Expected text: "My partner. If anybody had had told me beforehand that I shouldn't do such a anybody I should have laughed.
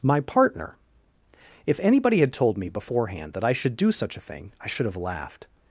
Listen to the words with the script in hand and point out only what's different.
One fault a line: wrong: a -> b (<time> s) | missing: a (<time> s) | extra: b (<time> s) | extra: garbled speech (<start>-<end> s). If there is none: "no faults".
missing: had (2.3 s)
wrong: shouldn't -> should (3.5 s)
wrong: anybody -> thing (4.2 s)